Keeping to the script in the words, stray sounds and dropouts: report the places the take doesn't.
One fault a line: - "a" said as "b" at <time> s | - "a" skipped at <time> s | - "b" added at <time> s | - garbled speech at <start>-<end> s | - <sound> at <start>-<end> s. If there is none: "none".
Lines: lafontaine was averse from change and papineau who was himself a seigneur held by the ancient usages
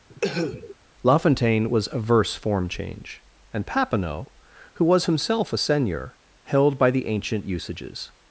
- cough at 0.1-0.8 s
- "from" said as "form" at 2.3 s